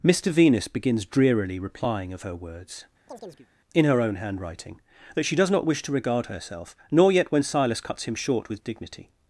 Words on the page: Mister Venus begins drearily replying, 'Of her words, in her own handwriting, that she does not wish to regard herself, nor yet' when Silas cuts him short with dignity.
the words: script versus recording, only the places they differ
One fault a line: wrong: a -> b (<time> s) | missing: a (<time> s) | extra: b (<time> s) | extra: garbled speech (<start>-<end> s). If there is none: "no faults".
no faults